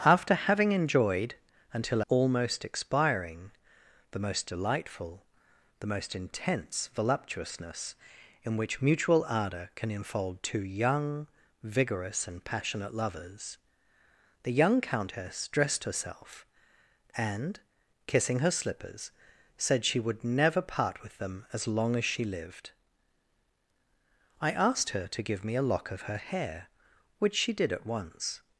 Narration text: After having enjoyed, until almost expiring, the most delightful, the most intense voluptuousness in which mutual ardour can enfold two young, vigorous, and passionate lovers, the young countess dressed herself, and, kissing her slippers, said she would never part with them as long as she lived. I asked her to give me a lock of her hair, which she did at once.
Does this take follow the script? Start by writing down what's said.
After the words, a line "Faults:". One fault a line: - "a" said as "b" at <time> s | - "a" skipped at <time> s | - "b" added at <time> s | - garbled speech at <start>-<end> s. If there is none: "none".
After having enjoyed, until almost expiring, the most delightful, the most intense voluptuousness in which mutual ardour can enfold two young, vigorous, and passionate lovers, the young countess dressed herself, and, kissing her slippers, said she would never part with them as long as she lived. I asked her to give me a lock of her hair, which she did at once.
Faults:
none